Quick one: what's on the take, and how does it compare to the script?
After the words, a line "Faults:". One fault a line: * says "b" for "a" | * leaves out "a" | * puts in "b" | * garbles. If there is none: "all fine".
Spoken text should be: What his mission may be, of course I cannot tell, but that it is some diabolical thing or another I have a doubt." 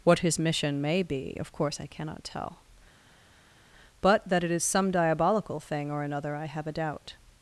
What his mission may be, of course I cannot tell, but that it is some diabolical thing or another I have a doubt."
Faults:
all fine